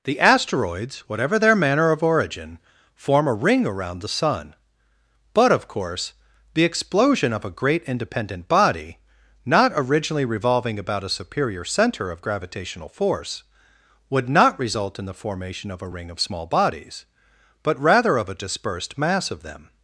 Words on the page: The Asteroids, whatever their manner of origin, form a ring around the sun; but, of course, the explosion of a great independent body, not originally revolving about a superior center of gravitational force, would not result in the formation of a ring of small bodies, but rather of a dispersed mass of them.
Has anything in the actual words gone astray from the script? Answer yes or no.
no